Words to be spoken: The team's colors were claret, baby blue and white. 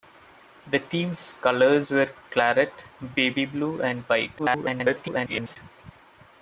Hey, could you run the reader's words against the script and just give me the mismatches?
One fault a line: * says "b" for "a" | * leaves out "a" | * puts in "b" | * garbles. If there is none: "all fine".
* garbles